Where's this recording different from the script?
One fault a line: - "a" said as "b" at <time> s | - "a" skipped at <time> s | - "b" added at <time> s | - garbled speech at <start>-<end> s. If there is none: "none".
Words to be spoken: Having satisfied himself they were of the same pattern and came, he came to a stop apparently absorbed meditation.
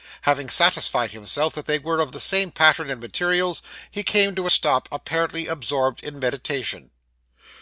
- "that" added at 1.5 s
- "came" said as "materials" at 3.0 s
- "in" added at 6.0 s